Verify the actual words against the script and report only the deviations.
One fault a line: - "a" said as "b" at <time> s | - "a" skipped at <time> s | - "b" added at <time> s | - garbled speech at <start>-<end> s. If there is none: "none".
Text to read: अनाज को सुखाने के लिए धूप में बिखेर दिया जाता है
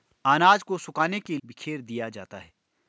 - "लिए धूप में" skipped at 1.4 s